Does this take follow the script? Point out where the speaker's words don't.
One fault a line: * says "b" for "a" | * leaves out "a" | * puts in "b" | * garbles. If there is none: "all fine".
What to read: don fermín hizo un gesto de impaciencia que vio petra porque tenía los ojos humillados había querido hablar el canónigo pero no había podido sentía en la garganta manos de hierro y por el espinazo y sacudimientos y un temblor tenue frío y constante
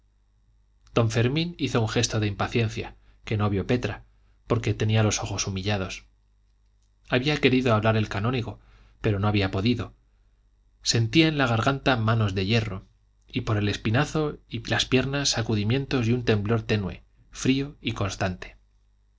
* puts in "no"
* puts in "las piernas"